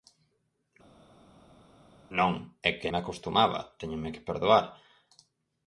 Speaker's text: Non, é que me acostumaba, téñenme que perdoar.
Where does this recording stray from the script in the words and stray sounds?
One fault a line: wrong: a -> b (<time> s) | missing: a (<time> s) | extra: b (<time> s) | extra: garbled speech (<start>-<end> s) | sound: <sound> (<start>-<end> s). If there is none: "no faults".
no faults